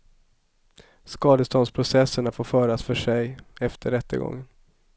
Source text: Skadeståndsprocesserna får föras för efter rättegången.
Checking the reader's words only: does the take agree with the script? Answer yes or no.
no